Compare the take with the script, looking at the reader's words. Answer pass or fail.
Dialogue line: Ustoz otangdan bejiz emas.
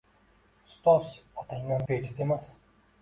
pass